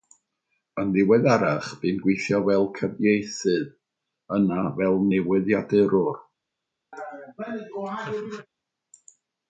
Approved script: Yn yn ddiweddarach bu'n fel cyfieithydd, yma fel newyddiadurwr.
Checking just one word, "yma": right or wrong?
wrong